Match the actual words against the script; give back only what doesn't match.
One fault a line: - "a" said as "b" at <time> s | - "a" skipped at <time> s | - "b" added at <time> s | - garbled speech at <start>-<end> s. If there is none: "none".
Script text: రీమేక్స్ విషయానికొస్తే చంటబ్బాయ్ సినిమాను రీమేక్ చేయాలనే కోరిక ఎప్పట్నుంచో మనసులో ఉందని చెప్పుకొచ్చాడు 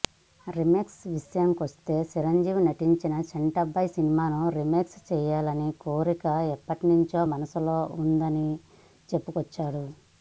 - "చిరంజీవి నటించిన" added at 2.1 s